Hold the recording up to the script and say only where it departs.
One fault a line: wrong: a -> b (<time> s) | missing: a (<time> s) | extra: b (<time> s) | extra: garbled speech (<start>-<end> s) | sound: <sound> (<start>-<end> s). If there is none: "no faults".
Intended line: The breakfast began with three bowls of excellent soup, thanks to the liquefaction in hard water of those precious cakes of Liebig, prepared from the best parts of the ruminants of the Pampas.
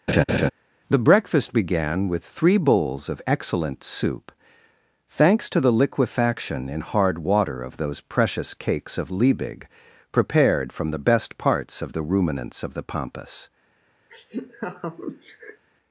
sound: laugh (0.1-0.5 s)
sound: laugh (14.1-15.7 s)